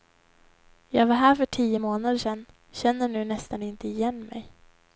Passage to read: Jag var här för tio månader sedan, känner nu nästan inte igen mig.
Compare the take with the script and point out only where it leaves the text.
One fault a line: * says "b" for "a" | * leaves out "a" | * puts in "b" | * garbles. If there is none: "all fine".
all fine